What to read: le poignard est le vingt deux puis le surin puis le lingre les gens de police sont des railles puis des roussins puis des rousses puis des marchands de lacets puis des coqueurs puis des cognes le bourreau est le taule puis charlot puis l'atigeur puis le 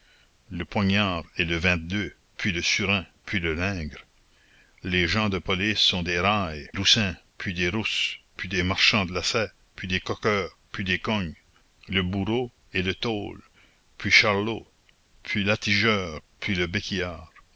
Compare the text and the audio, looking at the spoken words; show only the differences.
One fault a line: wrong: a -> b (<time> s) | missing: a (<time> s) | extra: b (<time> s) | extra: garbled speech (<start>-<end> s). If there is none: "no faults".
missing: puis des (6.7 s)